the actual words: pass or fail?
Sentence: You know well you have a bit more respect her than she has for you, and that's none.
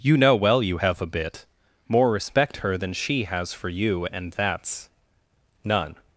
pass